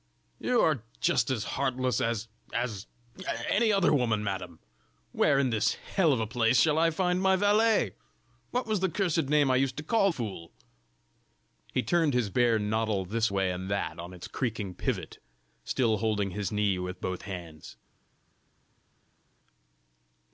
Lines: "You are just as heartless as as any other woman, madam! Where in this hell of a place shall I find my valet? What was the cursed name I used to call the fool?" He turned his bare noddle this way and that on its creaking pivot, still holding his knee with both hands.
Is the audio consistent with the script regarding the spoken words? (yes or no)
no